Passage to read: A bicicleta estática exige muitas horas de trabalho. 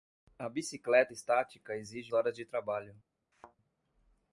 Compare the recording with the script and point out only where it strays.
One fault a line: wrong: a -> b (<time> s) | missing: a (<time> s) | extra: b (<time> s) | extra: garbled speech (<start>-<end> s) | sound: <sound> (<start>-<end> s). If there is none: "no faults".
missing: muitas (2.1 s)
sound: thud (3.3-3.6 s)